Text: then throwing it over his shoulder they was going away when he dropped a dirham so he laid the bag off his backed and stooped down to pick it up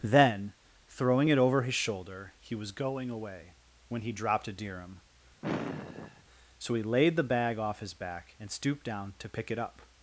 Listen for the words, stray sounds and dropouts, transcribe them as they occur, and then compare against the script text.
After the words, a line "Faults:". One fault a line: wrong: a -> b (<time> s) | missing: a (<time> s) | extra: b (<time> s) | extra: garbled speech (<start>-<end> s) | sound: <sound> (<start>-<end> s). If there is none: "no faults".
then throwing it over his shoulder he was going away when he dropped a dirham so he laid the bag off his back and stooped down to pick it up
Faults:
wrong: they -> he (2.4 s)
sound: sigh (5.4-6.2 s)
wrong: backed -> back (8.0 s)